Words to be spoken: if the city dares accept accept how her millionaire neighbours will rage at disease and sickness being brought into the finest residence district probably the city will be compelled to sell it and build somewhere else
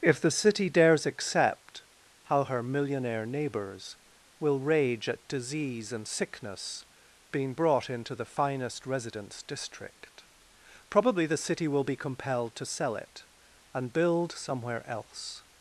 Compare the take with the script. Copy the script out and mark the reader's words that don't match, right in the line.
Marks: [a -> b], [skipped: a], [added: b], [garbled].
if the city dares accept [skipped: accept] how her millionaire neighbours will rage at disease and sickness being brought into the finest residence district probably the city will be compelled to sell it and build somewhere else